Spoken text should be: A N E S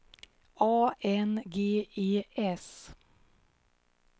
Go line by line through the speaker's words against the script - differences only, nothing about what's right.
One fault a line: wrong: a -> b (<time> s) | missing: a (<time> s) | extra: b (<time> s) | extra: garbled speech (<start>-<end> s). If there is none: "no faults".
extra: G (1.5 s)